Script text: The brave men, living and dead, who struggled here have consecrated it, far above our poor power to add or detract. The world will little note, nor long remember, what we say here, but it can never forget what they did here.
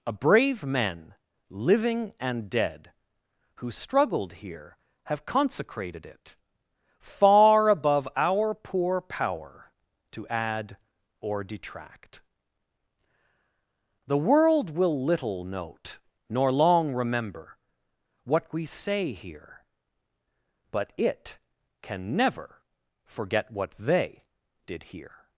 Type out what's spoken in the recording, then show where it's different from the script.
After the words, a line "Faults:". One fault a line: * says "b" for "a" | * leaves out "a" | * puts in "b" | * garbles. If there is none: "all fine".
A brave men, living and dead, who struggled here have consecrated it, far above our poor power to add or detract. The world will little note, nor long remember, what we say here, but it can never forget what they did here.
Faults:
* says "A" for "The"